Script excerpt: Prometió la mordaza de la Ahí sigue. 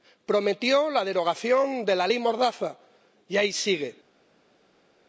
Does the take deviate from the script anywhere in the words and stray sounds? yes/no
yes